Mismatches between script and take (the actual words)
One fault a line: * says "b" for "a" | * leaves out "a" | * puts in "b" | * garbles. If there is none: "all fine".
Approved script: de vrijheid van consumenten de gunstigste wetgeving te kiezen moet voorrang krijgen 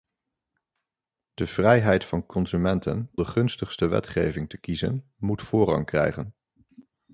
all fine